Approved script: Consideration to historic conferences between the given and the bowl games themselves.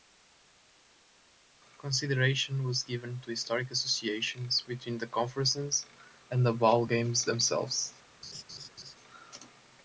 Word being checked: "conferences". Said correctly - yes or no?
no